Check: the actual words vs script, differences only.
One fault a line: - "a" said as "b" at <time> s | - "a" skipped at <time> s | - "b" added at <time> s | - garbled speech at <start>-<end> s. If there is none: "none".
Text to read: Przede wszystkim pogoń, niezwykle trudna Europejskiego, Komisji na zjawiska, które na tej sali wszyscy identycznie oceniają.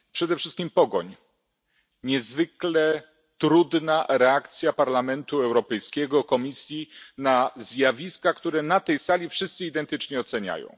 - "reakcja Parlamentu" added at 4.1 s